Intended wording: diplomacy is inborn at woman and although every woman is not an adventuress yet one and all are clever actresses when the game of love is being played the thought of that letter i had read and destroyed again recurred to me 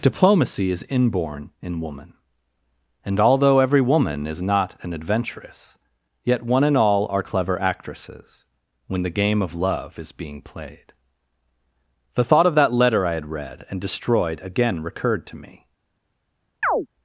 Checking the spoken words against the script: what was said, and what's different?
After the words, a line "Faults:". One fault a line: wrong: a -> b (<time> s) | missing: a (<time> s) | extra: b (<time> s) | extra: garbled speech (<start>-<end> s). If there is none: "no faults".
diplomacy is inborn in woman and although every woman is not an adventuress yet one and all are clever actresses when the game of love is being played the thought of that letter i had read and destroyed again recurred to me
Faults:
wrong: at -> in (1.6 s)